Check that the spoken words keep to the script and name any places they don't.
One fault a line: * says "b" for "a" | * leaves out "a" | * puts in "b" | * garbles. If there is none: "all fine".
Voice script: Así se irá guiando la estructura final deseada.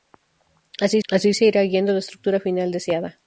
* puts in "así"